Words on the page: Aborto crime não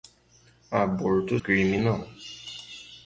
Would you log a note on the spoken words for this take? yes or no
no